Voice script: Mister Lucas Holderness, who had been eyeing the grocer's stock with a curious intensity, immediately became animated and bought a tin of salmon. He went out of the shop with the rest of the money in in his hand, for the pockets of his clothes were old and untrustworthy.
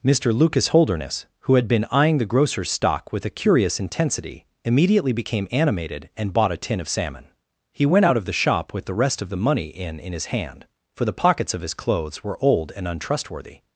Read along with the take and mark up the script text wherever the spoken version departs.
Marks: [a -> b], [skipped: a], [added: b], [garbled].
Mister Lucas Holderness, who had been eyeing the grocer's stock with a curious intensity, immediately became animated and bought a tin of salmon. He went out of the shop with the rest of the money in in his hand, for the pockets of his clothes were old and untrustworthy.